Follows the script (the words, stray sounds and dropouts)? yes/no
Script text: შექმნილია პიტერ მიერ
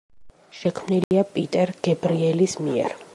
no